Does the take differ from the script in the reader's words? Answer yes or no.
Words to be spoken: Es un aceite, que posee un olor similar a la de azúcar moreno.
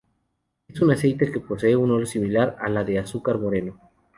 no